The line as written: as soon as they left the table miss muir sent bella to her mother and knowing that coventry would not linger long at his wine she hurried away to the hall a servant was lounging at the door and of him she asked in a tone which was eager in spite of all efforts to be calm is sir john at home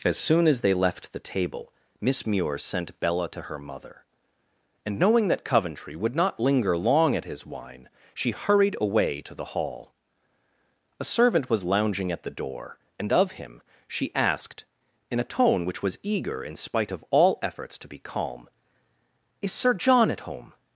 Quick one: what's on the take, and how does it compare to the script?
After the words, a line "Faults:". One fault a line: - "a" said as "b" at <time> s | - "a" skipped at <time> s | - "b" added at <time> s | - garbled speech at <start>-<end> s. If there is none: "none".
as soon as they left the table miss muir sent bella to her mother and knowing that coventry would not linger long at his wine she hurried away to the hall a servant was lounging at the door and of him she asked in a tone which was eager in spite of all efforts to be calm is sir john at home
Faults:
none